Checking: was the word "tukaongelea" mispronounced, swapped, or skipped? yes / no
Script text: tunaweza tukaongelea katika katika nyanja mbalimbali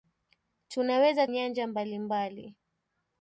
yes